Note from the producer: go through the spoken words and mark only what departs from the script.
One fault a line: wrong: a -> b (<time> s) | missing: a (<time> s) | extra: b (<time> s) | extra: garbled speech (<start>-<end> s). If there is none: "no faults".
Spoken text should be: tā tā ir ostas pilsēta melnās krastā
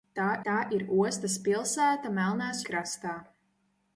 no faults